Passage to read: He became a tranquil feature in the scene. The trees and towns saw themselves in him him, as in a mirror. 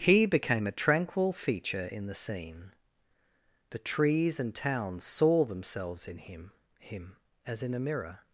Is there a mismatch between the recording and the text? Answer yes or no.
no